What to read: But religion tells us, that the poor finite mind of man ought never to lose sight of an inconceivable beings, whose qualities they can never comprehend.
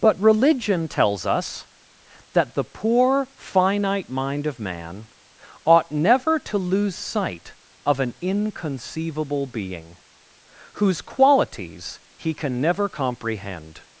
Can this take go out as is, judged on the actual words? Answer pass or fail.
fail